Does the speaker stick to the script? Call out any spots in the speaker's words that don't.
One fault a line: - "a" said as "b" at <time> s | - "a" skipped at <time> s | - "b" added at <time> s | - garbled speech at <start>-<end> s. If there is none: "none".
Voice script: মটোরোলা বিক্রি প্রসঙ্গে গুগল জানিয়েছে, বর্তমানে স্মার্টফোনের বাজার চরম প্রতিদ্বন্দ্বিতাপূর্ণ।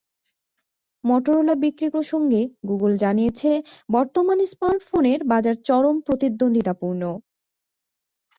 none